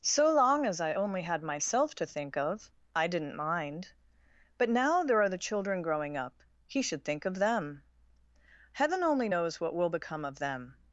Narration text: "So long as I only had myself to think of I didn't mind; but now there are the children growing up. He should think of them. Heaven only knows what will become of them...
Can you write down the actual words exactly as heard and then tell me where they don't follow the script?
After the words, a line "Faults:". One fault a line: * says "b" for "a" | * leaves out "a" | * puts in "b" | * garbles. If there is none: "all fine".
"So long as I only had myself to think of I didn't mind; but now there are the children growing up. He should think of them. Heaven only knows what will become of them...
Faults:
all fine